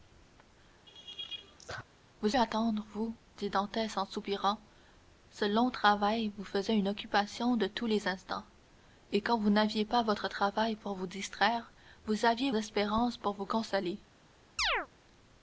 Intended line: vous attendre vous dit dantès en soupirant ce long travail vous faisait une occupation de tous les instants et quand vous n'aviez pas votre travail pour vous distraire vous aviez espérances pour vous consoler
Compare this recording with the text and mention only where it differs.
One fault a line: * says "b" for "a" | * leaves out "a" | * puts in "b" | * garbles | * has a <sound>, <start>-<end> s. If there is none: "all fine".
* has a laugh, 0.9-1.8 s
* has a chirp, 14.6-14.9 s